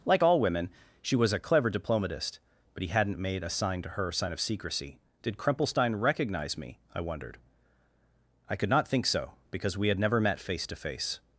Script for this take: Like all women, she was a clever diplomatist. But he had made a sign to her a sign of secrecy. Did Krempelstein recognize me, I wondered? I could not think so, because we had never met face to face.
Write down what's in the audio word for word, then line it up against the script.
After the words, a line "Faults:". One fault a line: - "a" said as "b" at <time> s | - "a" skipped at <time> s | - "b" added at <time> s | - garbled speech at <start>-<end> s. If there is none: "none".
Like all women, she was a clever diplomatist. But he hadn't made a sign to her sign of secrecy. Did Krempelstein recognize me, I wondered? I could not think so, because we had never met face to face.
Faults:
- "had" said as "hadn't" at 2.9 s
- "a" skipped at 4.1 s